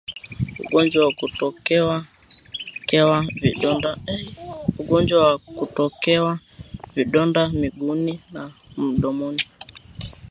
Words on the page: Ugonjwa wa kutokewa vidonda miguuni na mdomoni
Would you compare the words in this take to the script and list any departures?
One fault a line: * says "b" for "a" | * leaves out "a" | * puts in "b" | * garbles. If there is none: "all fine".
all fine